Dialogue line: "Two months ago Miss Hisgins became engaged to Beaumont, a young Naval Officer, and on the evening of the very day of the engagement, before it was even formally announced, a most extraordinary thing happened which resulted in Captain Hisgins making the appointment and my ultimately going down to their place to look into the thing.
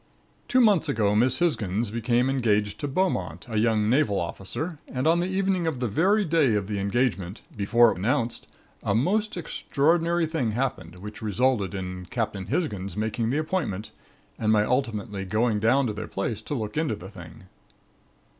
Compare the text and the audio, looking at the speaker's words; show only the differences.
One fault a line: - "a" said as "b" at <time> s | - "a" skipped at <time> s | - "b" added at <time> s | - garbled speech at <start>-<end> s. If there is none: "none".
- "was even formally" skipped at 8.0 s